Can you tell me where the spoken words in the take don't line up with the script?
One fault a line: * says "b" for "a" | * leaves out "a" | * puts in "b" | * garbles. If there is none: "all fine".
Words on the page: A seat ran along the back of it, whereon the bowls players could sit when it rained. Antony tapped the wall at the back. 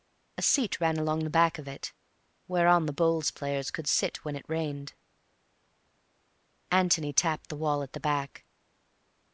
all fine